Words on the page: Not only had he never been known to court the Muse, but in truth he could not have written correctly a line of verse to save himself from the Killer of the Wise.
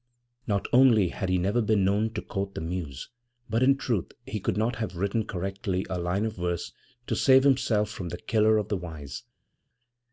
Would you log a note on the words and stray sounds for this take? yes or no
no